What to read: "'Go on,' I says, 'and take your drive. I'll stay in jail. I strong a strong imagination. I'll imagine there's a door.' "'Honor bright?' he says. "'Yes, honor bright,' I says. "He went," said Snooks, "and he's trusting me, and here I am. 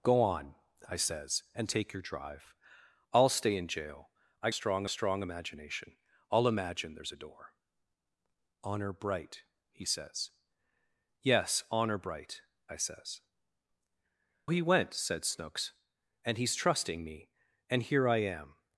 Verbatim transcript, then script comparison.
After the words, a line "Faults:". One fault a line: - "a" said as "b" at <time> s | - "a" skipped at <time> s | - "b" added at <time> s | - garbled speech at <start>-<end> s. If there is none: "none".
"'Go on,' I says, 'and take your drive. I'll stay in jail. I strong a strong imagination. I'll imagine there's a door.' "'Honor bright?' he says. "'Yes, honor bright,' I says. "He went," said Snooks, "and he's trusting me, and here I am.
Faults:
none